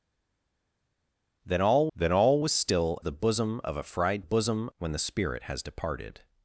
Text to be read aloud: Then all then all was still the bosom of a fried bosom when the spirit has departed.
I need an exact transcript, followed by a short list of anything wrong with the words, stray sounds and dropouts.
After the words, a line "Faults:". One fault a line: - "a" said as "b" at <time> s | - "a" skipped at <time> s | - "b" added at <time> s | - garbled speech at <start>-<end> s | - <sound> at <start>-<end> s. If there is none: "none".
Then all then all was still the bosom of a fried bosom when the spirit has departed.
Faults:
none